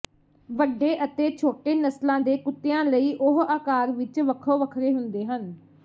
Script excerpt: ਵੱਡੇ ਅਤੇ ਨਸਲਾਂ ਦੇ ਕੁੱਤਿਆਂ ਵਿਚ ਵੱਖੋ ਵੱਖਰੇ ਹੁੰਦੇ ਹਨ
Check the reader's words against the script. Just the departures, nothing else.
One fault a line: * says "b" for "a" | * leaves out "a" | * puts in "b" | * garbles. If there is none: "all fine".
* puts in "ਛੋਟੇ"
* puts in "ਲਈ ਉਹ ਆਕਾਰ"